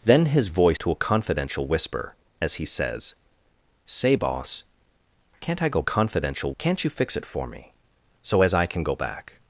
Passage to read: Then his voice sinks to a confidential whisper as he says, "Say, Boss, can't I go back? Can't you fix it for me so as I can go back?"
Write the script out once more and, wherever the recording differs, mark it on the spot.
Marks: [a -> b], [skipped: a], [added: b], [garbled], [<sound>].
Then his voice [skipped: sinks] to a confidential whisper as he says, "Say, Boss, can't I go [back? -> confidential] Can't you fix it for me so as I can go back?"